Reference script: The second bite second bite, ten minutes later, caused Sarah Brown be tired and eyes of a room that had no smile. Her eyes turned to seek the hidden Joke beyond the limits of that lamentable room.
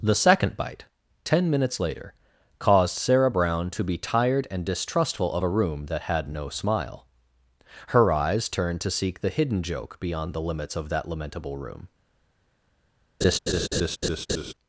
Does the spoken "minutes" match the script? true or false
true